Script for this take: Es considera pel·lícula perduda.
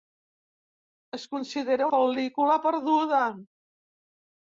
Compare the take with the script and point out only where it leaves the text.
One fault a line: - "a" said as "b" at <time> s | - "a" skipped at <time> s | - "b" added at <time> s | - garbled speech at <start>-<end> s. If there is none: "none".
none